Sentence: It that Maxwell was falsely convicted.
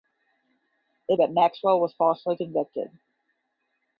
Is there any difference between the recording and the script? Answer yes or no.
no